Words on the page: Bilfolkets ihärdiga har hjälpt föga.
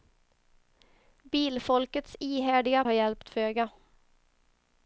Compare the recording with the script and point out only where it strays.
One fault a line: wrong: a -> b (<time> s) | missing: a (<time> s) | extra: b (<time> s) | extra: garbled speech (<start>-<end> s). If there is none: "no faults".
no faults